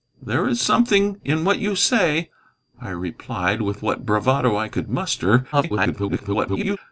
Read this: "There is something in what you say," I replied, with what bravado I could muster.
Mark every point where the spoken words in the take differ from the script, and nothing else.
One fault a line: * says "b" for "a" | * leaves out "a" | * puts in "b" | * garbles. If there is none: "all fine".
* garbles